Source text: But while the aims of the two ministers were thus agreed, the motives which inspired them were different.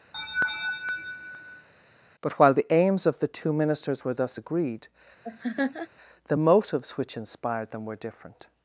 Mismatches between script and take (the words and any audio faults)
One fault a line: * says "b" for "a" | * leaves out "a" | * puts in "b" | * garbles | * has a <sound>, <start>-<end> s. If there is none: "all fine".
* has a laugh, 0.1-1.7 s
* has a laugh, 5.2-5.9 s